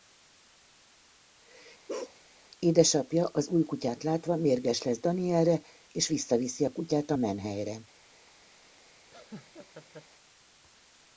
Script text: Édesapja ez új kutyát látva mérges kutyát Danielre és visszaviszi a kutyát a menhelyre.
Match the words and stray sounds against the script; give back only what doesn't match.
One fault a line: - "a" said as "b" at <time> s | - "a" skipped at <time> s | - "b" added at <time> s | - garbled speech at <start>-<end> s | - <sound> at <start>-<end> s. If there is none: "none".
- bark at 1.9-2.2 s
- "ez" said as "az" at 3.3 s
- "kutyát" said as "lesz" at 4.8 s
- laugh at 9.1-10.1 s